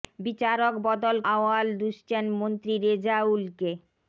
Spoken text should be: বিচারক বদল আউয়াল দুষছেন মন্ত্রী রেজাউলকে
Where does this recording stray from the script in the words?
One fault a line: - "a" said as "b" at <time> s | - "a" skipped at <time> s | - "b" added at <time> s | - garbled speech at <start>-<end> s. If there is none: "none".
none